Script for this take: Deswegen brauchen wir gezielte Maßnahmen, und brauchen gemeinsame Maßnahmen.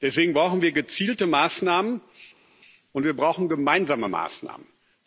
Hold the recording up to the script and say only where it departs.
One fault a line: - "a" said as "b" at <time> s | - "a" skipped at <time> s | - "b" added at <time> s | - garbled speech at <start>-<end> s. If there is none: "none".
- "wir" added at 3.1 s